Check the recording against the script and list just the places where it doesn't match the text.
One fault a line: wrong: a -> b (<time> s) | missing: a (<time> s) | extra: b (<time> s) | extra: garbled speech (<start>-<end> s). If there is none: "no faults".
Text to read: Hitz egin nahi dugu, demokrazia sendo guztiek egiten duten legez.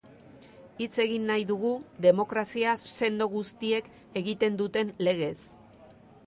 no faults